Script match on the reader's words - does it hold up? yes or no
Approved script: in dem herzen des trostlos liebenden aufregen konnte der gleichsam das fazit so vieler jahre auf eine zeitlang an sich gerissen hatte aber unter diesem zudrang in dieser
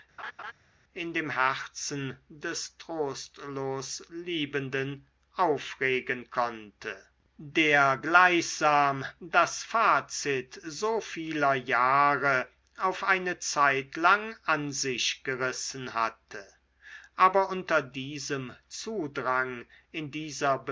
yes